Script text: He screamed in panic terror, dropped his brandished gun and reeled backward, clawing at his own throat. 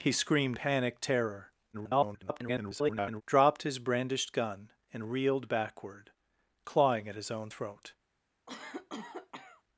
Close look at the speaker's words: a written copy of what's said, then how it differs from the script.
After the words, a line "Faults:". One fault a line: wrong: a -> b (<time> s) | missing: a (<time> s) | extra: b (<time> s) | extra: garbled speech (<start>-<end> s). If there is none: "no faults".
He screamed panic terror, [garbled] dropped his brandished gun and reeled backward, clawing at his own throat.
Faults:
missing: in (0.6 s)
extra: garbled speech (1.7-3.2 s)